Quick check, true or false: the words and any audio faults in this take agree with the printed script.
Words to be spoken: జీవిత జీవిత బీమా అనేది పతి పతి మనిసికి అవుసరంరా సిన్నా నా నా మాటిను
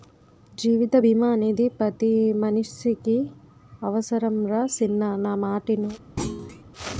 false